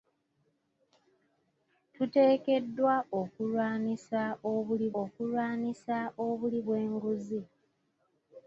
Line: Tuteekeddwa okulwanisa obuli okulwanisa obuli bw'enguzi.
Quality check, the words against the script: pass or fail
pass